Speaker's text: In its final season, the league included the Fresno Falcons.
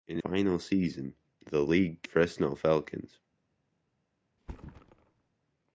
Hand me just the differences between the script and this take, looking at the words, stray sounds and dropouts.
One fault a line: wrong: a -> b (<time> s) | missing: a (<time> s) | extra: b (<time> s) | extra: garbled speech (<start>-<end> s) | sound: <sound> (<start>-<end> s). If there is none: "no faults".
missing: its (0.2 s)
missing: included the (2.1 s)
sound: thud (4.4-5.3 s)